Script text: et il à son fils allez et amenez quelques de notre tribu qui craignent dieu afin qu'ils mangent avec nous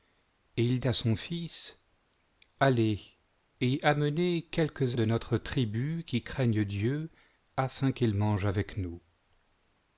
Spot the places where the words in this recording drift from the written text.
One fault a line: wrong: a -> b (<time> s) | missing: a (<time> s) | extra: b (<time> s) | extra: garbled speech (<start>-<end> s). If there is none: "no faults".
no faults